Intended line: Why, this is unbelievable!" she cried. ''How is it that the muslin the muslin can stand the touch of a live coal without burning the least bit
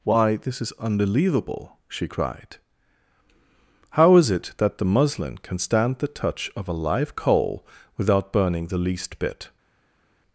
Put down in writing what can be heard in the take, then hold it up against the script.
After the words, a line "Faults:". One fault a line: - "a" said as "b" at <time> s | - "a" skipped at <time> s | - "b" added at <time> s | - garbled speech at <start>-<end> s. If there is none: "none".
Why, this is unbelievable!" she cried. ''How is it that the muslin can stand the touch of a live coal without burning the least bit
Faults:
- "the muslin" skipped at 5.4 s